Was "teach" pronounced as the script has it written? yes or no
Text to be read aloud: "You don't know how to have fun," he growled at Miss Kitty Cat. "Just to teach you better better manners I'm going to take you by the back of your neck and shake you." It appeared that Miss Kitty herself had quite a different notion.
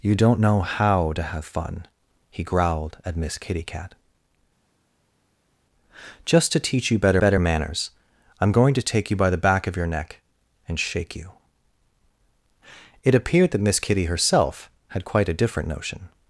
yes